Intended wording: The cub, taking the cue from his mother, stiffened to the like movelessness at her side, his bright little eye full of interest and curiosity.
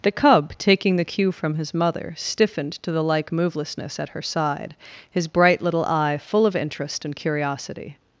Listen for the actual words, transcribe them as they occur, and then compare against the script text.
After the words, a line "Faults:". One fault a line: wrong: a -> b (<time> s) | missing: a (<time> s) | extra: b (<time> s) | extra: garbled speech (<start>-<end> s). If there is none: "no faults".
The cub, taking the cue from his mother, stiffened to the like movelessness at her side, his bright little eye full of interest and curiosity.
Faults:
no faults